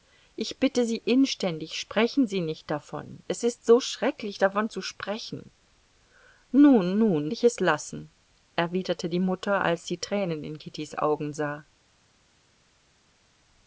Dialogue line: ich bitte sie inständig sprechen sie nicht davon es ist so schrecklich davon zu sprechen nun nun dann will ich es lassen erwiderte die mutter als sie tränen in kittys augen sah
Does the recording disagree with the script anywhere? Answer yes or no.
yes